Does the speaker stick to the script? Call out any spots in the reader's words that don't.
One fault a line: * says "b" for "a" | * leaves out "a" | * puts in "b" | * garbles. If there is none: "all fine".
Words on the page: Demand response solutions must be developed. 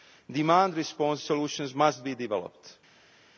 all fine